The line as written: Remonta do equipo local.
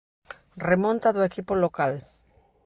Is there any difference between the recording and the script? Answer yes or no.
no